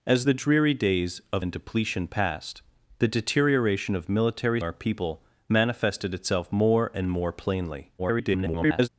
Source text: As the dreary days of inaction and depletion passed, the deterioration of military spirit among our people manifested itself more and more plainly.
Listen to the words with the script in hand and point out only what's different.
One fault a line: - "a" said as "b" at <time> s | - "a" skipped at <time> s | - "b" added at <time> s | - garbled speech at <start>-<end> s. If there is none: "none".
- "inaction" skipped at 1.5 s
- "spirit among" skipped at 4.6 s
- garbled speech at 8.0-8.9 s